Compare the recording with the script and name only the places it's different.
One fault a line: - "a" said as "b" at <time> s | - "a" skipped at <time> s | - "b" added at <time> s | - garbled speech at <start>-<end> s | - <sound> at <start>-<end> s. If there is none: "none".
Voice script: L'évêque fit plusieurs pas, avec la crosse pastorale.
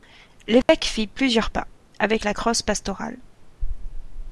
- dropout at 0.6-0.7 s